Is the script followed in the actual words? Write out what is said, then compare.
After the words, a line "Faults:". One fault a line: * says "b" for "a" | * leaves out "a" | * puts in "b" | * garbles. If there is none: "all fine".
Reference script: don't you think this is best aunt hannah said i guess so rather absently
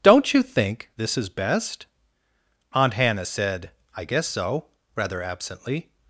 don't you think this is best aunt hannah said i guess so rather absently
Faults:
all fine